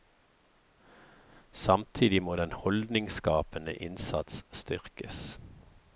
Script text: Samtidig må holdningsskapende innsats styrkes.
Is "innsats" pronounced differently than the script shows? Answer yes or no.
no